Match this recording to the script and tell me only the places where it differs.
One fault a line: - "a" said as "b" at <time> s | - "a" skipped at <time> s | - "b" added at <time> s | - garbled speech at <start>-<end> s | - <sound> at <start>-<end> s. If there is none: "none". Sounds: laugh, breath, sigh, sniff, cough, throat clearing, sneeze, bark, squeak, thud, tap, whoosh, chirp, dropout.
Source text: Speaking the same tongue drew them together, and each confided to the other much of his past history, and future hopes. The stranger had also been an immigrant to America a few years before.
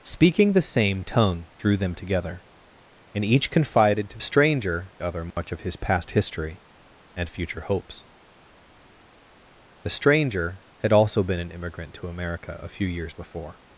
- "the" said as "stranger" at 4.2 s
- dropout at 5.3-5.4 s